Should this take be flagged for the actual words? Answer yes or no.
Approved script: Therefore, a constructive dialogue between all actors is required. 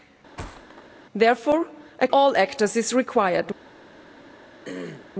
yes